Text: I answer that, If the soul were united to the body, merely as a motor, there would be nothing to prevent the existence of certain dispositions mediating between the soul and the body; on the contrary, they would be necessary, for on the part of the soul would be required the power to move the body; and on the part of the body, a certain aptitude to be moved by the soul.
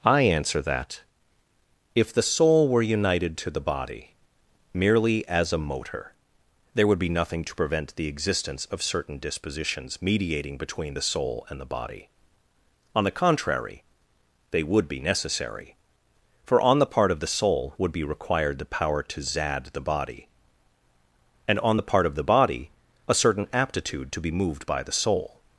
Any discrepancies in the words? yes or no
yes